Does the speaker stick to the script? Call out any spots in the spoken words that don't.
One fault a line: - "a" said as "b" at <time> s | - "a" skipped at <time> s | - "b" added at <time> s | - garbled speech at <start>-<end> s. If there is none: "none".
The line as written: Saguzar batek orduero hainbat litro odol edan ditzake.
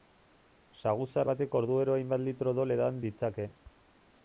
none